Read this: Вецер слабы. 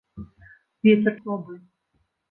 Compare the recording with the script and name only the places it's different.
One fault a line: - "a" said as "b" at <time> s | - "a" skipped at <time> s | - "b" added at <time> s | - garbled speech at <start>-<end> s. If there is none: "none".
none